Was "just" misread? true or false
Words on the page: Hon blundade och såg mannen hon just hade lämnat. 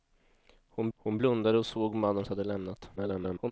true